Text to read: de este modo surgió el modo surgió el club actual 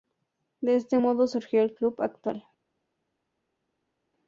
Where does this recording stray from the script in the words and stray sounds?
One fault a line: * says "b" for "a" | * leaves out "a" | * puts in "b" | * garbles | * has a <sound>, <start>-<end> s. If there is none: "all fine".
* leaves out "modo surgió el"